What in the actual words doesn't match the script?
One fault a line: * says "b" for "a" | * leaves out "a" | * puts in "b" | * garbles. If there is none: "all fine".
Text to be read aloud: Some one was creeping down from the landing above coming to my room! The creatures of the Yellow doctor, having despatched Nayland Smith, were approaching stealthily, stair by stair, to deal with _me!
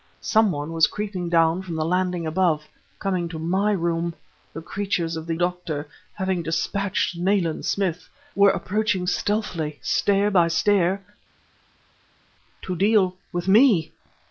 * leaves out "Yellow"